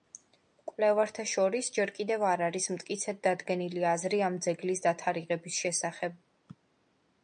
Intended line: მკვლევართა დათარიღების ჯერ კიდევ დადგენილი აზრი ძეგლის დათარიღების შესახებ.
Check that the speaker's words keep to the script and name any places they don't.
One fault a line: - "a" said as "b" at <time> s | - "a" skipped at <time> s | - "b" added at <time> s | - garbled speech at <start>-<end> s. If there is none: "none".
- "დათარიღების" said as "შორის" at 1.3 s
- "არ არის მტკიცედ" added at 2.3 s
- "ამ" added at 4.3 s